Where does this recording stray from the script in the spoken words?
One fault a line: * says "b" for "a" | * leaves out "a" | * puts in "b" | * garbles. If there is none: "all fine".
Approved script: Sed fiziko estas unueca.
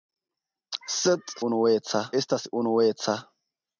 * says "unueca" for "fiziko"